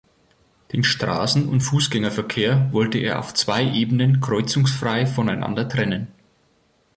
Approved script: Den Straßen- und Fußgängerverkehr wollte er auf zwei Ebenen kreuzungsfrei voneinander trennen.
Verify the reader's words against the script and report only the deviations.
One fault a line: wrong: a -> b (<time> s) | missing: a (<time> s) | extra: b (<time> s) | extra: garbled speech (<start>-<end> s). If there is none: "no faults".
no faults